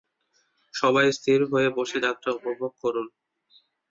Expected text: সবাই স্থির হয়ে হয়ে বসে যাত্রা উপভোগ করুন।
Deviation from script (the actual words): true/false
true